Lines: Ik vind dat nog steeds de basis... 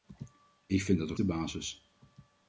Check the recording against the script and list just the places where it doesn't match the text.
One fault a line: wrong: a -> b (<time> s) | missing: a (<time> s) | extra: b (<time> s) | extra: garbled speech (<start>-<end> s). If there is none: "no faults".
missing: steeds (1.2 s)